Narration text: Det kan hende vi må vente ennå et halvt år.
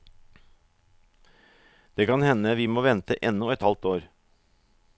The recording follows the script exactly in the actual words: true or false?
true